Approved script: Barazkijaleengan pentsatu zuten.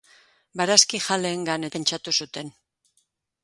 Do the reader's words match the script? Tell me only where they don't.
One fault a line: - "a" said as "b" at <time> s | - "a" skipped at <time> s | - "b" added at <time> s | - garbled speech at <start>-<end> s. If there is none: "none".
none